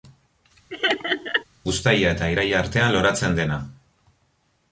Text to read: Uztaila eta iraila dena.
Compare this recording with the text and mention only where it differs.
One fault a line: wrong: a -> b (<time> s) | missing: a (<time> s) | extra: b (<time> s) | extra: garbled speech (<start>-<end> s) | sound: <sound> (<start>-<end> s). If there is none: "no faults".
sound: laugh (0.7-1.4 s)
extra: artean loratzen (2.6 s)